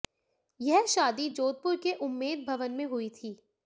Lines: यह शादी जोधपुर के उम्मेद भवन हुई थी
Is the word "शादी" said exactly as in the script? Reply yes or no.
yes